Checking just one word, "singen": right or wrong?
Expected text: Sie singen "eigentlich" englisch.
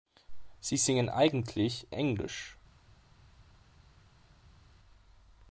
right